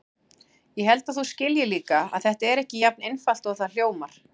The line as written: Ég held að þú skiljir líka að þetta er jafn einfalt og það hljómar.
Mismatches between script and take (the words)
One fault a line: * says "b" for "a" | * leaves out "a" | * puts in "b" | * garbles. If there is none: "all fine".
* puts in "ekki"